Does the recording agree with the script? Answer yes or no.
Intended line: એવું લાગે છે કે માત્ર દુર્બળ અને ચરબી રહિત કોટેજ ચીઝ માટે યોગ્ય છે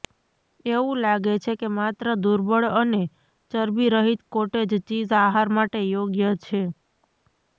no